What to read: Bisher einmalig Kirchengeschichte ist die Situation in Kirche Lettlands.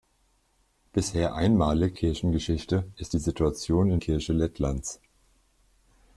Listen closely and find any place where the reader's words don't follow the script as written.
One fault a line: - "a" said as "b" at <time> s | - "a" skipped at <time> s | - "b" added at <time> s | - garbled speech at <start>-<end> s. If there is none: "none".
none